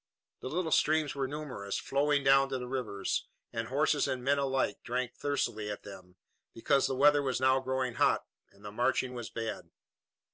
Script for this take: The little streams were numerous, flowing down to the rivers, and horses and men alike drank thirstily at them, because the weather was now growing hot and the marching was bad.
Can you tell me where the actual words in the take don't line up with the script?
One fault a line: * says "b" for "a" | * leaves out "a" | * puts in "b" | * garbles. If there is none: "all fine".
all fine